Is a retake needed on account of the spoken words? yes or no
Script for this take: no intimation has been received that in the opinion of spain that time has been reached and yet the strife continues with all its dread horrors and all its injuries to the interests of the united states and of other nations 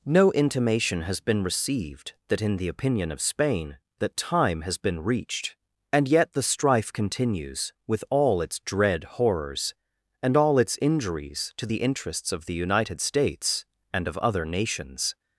no